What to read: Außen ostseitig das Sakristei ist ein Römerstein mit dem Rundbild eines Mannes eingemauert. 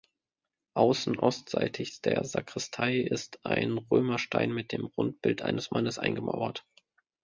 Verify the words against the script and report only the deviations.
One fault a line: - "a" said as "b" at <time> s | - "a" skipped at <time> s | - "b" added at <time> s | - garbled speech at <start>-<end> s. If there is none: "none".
- "das" said as "der" at 2.0 s